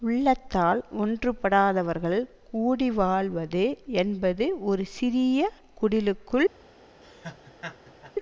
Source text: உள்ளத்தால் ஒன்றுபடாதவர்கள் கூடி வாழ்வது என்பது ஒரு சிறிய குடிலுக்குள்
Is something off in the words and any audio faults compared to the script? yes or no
yes